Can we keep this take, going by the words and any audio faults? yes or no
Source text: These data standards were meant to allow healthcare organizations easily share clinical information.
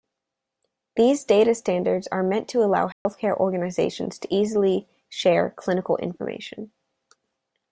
no